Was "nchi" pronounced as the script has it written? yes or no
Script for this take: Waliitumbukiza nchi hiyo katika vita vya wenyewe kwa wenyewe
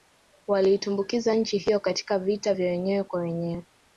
yes